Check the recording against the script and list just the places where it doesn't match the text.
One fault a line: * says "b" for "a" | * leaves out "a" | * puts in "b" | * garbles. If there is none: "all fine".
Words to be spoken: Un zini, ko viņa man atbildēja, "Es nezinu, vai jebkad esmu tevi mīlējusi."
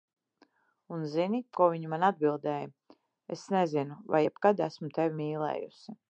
all fine